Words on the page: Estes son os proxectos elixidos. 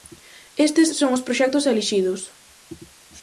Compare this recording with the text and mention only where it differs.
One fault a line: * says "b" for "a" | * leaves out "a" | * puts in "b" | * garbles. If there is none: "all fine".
all fine